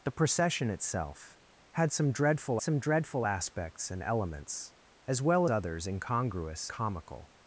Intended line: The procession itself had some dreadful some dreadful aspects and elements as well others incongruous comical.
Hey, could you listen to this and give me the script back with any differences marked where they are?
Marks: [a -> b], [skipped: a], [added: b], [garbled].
The procession itself had some dreadful some dreadful aspects and elements as well others incongruous comical.